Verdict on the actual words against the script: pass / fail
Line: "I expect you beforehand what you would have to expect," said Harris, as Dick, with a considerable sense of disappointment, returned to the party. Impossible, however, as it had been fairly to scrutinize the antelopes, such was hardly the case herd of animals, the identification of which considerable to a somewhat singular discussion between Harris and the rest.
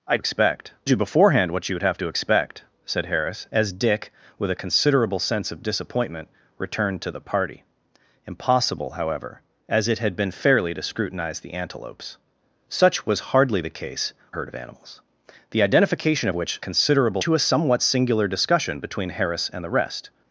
pass